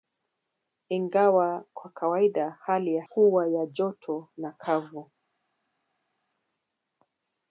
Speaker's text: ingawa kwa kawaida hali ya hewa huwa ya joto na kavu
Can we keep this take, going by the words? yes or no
no